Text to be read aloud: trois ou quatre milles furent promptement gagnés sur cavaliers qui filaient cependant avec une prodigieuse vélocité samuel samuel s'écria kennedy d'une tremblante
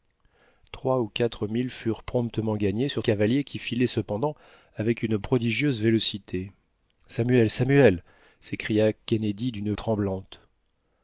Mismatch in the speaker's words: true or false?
false